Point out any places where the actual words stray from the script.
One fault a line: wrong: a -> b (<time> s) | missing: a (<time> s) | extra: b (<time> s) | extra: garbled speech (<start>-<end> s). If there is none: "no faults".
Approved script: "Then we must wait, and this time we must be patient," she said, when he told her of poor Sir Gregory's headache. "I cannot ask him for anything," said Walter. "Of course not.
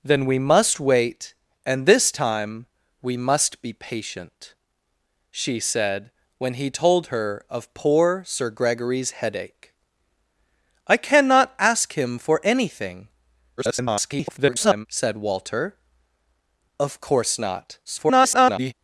extra: garbled speech (13.6-14.9 s)
extra: garbled speech (17.9-18.7 s)